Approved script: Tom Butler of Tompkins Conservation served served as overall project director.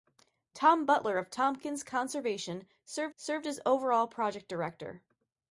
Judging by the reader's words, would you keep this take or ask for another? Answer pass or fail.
pass